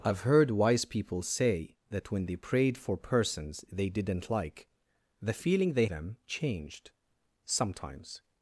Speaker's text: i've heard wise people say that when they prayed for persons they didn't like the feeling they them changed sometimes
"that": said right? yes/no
yes